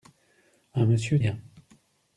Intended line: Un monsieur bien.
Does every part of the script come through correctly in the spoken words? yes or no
yes